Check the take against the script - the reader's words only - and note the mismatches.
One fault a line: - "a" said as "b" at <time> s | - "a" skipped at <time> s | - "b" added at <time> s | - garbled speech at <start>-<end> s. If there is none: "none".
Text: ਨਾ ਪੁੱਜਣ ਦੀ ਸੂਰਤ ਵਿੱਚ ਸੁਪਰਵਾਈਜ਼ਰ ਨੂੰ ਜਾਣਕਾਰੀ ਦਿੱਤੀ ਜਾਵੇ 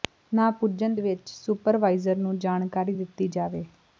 - "ਦੀ ਸੂਰਤ" skipped at 0.9 s